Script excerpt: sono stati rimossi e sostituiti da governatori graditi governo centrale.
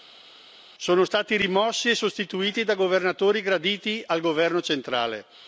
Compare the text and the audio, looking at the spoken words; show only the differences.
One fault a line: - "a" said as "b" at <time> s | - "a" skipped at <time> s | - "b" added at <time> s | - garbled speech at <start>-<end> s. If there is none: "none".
- "al" added at 4.1 s